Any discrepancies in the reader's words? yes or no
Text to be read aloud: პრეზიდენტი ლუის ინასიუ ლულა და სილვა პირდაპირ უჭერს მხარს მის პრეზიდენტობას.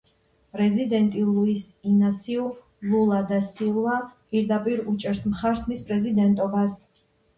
no